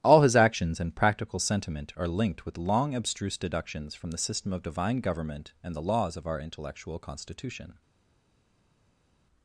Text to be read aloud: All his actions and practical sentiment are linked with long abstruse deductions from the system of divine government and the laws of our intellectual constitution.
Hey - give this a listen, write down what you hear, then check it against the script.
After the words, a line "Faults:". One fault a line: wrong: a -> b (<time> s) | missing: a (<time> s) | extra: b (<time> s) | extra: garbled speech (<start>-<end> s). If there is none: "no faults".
All his actions and practical sentiment are linked with long abstruse deductions from the system of divine government and the laws of our intellectual constitution.
Faults:
no faults